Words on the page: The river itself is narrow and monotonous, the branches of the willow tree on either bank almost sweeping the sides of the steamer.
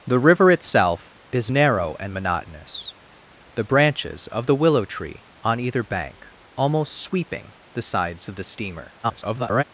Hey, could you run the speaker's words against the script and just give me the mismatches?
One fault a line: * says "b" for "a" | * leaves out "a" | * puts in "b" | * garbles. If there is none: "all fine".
* garbles